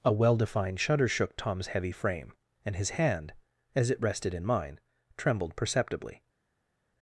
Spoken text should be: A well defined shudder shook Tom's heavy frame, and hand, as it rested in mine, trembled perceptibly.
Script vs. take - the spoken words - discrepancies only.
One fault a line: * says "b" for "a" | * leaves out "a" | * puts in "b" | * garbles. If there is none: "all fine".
* puts in "his"